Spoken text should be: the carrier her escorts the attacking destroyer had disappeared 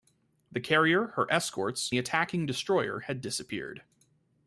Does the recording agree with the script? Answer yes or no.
yes